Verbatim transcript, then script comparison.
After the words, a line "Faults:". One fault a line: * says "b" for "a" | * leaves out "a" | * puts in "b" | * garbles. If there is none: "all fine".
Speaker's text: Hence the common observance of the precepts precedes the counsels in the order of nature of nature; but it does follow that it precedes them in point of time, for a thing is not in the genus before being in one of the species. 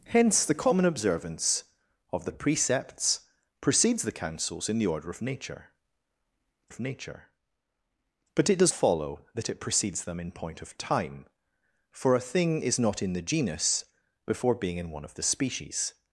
Hence the common observance of the precepts precedes the counsels in the order of nature of nature; but it does follow that it precedes them in point of time, for a thing is not in the genus before being in one of the species.
Faults:
all fine